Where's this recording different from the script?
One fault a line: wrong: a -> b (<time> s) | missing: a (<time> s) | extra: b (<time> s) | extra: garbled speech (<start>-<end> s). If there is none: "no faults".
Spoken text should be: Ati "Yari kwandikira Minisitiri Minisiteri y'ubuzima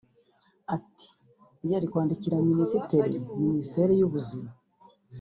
no faults